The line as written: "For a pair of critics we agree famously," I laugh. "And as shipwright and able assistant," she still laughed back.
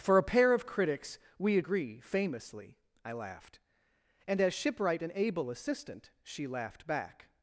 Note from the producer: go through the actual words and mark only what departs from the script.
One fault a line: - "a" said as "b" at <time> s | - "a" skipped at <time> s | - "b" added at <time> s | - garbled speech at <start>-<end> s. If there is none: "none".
- "laugh" said as "laughed" at 3.1 s
- "still" skipped at 6.5 s